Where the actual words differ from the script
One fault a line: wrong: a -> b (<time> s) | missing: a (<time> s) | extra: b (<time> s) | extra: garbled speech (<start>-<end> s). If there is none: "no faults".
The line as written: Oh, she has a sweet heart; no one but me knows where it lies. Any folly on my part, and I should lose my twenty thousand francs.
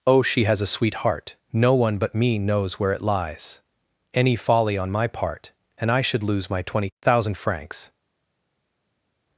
no faults